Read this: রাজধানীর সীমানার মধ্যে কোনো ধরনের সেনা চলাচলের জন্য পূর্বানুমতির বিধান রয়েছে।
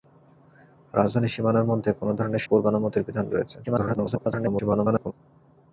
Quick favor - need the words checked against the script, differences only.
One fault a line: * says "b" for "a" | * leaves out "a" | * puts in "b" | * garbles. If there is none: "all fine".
* leaves out "সেনা চলাচলের জন্য"
* garbles